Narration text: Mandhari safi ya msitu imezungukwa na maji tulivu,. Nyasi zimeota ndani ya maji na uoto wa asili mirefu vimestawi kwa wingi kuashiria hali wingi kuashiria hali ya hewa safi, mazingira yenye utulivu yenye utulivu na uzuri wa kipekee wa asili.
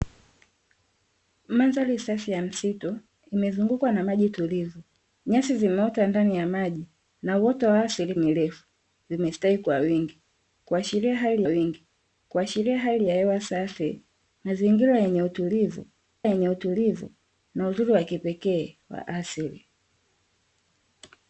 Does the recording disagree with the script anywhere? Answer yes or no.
no